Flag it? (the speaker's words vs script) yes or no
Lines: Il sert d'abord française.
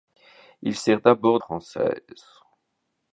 no